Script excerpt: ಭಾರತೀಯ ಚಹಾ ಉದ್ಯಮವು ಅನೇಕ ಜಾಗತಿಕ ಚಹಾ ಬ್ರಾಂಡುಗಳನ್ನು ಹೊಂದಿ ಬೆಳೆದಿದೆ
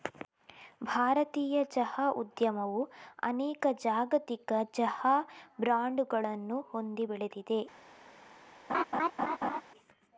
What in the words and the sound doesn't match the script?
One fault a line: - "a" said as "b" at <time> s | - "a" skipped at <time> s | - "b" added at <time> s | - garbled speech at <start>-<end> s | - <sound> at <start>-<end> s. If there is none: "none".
- laugh at 8.7-9.6 s